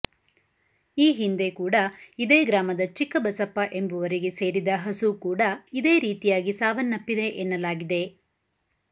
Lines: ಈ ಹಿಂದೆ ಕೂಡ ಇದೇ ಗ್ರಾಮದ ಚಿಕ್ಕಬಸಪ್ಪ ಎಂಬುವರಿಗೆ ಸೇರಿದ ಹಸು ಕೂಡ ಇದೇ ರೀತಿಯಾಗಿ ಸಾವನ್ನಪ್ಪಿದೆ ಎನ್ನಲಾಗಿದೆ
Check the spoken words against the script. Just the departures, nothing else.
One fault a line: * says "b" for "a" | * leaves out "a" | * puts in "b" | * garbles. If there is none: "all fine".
all fine